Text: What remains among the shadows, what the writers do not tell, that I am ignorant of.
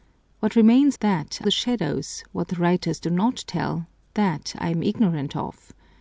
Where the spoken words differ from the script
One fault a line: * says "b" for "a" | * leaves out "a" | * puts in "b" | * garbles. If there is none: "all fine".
* says "that" for "among"